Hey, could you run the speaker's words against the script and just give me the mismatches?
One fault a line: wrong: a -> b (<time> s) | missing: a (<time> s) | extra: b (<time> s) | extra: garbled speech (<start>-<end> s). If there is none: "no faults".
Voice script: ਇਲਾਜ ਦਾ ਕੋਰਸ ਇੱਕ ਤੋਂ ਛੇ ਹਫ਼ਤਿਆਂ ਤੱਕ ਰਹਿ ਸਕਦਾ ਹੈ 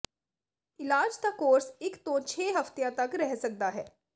no faults